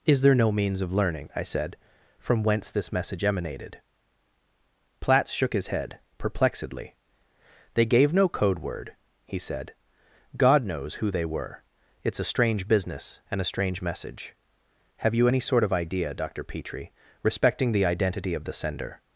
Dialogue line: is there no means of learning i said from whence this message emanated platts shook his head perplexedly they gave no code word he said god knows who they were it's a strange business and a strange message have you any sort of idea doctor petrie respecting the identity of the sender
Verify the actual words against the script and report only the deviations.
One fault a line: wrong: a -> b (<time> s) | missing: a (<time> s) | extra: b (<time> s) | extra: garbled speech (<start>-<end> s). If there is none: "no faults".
no faults